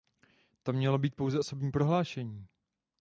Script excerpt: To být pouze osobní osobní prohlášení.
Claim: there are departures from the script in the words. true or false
true